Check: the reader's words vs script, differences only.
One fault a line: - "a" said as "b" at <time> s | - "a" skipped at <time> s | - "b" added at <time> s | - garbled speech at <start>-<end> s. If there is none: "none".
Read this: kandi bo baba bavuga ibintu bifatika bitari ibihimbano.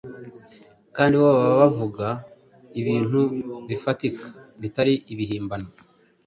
none